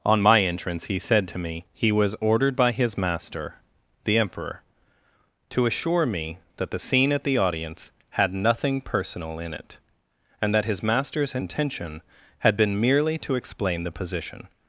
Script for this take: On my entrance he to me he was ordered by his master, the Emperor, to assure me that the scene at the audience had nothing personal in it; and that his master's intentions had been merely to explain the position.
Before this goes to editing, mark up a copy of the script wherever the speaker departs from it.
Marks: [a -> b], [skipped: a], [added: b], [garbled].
On my entrance he [added: said] to me he was ordered by his master, the Emperor, to assure me that the scene at the audience had nothing personal in it; and that his master's [intentions -> intention] had been merely to explain the position.